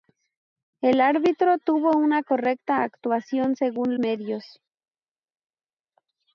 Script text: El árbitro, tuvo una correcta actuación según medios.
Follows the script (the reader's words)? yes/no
yes